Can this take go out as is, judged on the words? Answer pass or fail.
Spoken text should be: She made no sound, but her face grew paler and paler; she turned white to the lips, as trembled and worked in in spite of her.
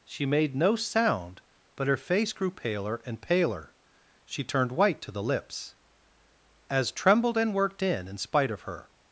pass